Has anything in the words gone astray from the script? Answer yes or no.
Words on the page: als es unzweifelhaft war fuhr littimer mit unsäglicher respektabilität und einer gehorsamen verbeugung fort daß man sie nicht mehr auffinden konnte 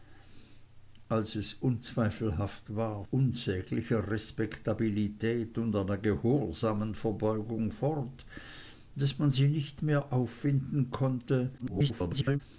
yes